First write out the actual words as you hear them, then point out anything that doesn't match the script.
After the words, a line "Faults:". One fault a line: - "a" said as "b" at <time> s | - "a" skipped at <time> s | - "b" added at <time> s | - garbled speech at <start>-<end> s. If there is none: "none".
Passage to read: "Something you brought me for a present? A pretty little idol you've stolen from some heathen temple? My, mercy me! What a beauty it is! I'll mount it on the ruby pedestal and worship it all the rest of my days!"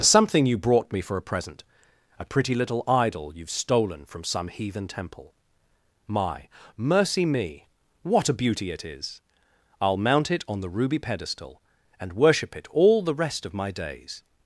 "Something you brought me for a present? A pretty little idol you've stolen from some heathen temple? My, mercy me! What a beauty it is! I'll mount it on the ruby pedestal and worship it all the rest of my days!"
Faults:
none